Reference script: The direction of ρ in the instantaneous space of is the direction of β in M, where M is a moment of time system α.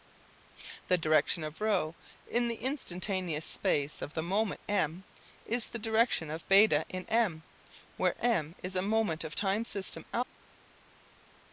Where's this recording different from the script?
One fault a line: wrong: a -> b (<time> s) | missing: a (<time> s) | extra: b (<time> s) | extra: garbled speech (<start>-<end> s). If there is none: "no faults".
extra: the moment M (4.1 s)